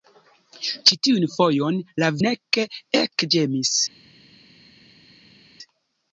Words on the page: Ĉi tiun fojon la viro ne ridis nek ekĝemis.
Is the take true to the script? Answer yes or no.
no